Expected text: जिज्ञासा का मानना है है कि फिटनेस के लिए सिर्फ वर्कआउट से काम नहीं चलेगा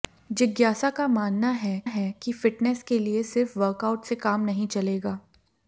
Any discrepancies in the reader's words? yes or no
no